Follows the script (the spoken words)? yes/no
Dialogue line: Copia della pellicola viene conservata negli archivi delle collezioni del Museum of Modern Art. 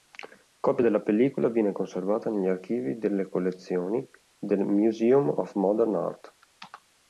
yes